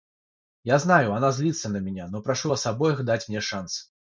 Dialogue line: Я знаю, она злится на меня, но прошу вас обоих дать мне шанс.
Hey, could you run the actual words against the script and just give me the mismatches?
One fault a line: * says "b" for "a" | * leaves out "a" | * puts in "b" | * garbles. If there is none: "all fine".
all fine